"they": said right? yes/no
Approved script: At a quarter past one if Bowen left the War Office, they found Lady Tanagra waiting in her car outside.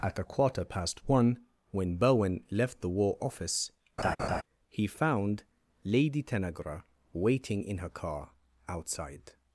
no